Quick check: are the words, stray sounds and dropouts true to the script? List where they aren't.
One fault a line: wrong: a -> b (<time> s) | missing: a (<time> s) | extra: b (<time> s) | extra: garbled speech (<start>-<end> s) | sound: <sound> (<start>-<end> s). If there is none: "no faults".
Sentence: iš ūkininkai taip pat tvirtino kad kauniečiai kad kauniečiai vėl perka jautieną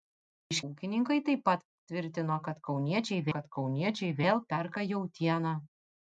no faults